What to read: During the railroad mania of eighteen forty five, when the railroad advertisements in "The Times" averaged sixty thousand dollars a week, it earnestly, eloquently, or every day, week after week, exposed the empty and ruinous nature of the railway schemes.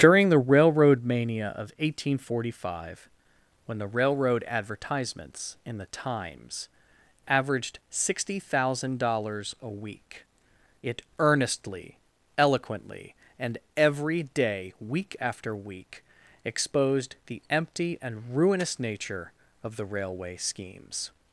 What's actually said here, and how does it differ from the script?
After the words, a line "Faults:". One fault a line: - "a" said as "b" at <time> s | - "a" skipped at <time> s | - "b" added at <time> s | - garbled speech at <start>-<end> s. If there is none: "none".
During the railroad mania of eighteen forty five, when the railroad advertisements in "The Times" averaged sixty thousand dollars a week, it earnestly, eloquently, and every day, week after week, exposed the empty and ruinous nature of the railway schemes.
Faults:
- "or" said as "and" at 13.4 s